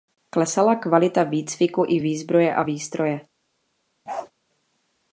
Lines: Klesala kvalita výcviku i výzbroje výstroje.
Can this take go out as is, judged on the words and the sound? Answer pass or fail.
fail